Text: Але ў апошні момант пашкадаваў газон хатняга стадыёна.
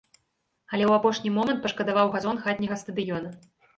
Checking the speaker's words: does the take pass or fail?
pass